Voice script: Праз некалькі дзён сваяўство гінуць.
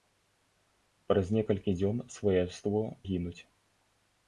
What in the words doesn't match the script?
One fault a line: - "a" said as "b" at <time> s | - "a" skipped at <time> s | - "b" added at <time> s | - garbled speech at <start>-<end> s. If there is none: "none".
none